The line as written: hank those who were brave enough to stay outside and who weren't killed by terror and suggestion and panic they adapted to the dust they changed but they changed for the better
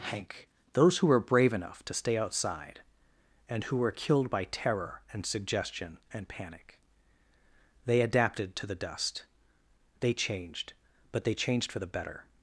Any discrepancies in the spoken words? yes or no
yes